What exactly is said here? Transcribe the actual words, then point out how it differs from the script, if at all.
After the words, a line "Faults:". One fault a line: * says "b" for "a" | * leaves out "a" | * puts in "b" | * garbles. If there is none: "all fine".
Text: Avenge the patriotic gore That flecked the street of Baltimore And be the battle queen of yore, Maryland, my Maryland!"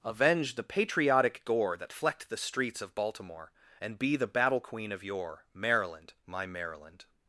Avenge the patriotic gore That flecked the streets of Baltimore And be the battle queen of yore, Maryland, my Maryland!"
Faults:
* says "streets" for "street"